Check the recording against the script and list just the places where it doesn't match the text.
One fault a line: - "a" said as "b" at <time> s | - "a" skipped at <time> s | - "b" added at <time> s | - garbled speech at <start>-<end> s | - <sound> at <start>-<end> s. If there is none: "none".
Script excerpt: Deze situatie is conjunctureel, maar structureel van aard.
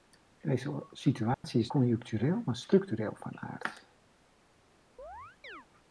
- dropout at 1.3-1.4 s
- chirp at 5.0-5.7 s